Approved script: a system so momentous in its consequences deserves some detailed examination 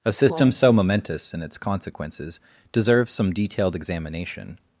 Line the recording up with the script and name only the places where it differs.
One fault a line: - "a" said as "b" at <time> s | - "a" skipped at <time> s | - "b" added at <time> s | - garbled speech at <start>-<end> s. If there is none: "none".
none